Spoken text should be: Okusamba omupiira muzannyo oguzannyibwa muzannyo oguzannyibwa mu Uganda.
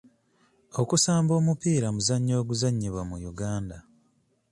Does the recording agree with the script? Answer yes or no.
no